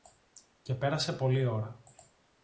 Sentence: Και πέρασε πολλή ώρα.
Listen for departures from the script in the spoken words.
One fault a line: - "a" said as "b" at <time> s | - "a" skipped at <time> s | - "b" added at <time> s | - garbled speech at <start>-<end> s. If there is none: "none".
none